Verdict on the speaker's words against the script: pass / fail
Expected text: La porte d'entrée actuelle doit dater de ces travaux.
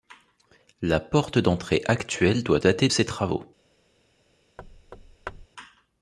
fail